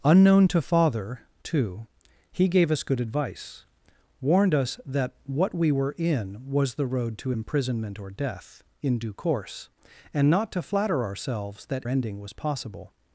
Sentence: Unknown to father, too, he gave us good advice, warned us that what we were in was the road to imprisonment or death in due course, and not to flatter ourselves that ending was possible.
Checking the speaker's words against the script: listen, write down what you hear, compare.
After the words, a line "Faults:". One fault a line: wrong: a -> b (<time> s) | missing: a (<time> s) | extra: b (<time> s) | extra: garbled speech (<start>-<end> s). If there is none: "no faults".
Unknown to father, too, he gave us good advice, warned us that what we were in was the road to imprisonment or death in due course, and not to flatter ourselves that ending was possible.
Faults:
no faults